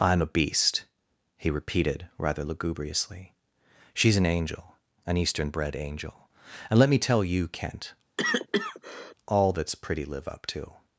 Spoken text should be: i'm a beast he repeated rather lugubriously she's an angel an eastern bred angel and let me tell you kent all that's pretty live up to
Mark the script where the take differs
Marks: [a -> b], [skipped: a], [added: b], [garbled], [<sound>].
i'm a beast he repeated rather lugubriously she's an angel an eastern bred angel and let me tell you kent [cough] all that's pretty live up to